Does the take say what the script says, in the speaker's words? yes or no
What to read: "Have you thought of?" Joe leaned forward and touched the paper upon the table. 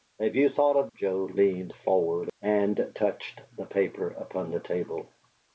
yes